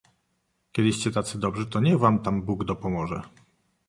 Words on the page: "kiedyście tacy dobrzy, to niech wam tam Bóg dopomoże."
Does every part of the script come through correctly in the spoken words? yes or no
yes